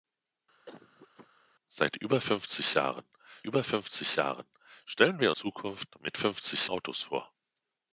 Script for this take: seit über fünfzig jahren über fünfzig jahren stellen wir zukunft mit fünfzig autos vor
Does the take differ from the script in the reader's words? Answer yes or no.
no